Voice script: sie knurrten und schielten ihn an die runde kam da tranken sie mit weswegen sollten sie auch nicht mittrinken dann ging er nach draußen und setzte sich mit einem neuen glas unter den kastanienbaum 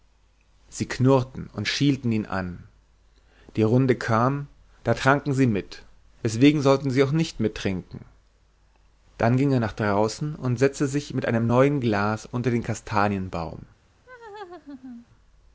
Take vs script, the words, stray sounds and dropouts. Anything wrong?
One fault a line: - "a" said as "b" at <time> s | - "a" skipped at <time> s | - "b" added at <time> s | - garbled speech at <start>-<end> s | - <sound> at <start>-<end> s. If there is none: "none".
- laugh at 14.1-15.1 s